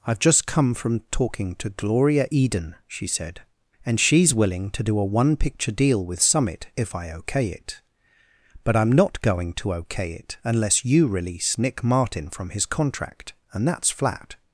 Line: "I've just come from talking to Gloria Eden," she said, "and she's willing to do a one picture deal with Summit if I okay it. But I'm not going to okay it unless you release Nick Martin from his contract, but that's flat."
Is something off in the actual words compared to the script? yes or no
yes